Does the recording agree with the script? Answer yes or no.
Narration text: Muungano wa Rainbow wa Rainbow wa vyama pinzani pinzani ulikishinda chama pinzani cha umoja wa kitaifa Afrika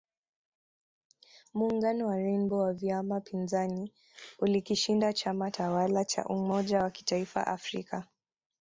no